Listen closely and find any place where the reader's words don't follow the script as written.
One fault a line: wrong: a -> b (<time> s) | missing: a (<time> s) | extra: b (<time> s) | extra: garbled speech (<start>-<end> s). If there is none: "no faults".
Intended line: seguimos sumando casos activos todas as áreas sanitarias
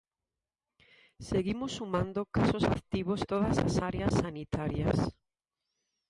no faults